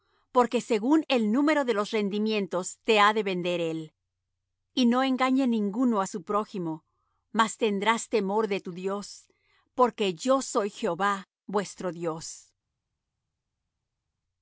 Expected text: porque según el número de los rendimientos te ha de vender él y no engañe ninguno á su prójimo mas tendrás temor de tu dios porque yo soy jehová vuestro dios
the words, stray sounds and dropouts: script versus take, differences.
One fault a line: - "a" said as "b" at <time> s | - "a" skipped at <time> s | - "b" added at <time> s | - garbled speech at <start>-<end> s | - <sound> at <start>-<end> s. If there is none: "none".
none